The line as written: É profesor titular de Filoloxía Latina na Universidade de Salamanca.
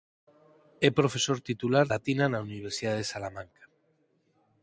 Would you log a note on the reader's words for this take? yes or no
yes